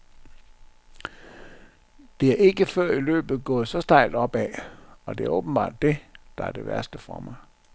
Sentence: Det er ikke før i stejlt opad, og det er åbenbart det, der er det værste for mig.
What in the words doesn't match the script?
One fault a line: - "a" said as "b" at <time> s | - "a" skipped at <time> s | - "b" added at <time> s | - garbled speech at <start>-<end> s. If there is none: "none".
- "løbet gået så" added at 3.0 s